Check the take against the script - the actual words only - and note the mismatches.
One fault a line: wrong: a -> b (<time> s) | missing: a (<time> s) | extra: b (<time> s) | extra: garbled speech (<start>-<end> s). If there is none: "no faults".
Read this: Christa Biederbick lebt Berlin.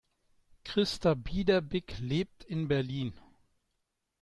extra: in (2.4 s)